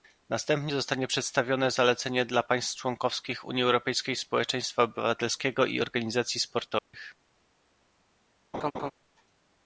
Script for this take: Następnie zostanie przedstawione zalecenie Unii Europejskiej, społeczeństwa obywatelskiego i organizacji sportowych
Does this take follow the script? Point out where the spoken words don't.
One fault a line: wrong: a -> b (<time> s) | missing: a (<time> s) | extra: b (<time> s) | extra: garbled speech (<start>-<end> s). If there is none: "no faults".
extra: dla państw członkowskich (2.2 s)